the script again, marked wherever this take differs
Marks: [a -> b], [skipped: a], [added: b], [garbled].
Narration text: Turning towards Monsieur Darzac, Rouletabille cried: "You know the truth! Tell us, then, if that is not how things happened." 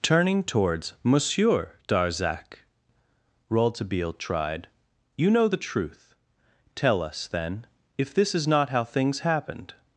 Turning towards Monsieur Darzac, Rouletabille [cried: -> tried] "You know the truth! Tell us, then, if [that -> this] is not how things happened."